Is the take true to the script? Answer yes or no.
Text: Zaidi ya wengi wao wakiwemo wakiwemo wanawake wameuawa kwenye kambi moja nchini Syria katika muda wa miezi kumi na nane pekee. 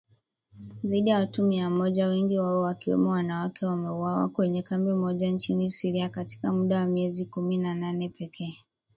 no